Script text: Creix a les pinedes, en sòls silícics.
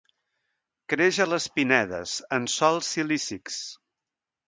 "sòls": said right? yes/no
yes